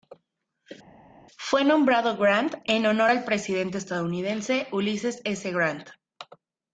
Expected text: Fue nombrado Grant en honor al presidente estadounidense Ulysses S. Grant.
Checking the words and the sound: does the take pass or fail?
pass